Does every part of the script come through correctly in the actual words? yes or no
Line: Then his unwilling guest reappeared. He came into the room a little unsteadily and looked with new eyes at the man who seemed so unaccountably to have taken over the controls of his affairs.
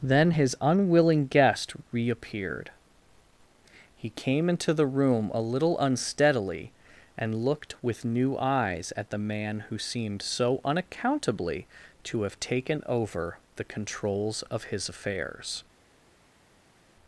yes